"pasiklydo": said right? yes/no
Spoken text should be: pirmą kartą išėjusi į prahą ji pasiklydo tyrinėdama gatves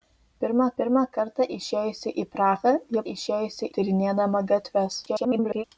no